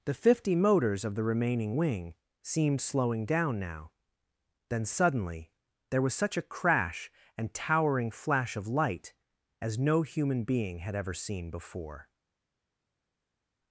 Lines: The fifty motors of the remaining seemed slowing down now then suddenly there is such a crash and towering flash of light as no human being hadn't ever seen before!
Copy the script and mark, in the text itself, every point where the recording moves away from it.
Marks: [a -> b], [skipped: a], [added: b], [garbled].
The fifty motors of the remaining [added: wing] seemed slowing down now then suddenly there [is -> was] such a crash and towering flash of light as no human being [hadn't -> had] ever seen before!